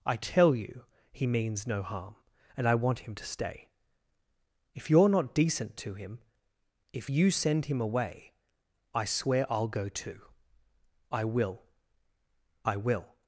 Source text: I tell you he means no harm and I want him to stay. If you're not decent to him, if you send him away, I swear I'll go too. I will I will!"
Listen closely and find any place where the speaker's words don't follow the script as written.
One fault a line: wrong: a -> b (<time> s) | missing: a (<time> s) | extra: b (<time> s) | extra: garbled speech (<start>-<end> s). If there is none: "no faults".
no faults